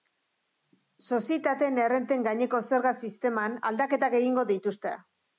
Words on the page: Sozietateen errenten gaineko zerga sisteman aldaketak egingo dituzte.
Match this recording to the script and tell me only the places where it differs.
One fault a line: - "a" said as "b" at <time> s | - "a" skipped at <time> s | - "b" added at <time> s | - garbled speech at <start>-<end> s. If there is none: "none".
none